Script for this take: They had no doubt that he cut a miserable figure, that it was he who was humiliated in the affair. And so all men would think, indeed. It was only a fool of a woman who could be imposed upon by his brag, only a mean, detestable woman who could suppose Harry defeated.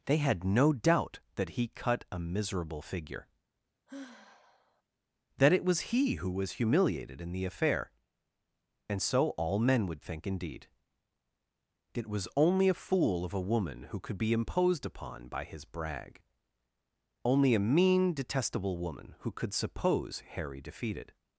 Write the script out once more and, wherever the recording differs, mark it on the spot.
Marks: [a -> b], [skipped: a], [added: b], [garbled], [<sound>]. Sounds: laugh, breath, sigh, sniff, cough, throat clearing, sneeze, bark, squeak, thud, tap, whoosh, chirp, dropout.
They had no doubt that he cut a miserable figure, [sigh] that it was he who was humiliated in the affair. And so all men would think, indeed. It was only a fool of a woman who could be imposed upon by his brag, only a mean, detestable woman who could suppose Harry defeated.